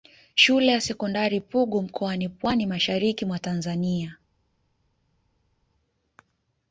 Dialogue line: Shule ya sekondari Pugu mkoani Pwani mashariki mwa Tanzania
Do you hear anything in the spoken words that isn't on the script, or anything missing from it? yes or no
no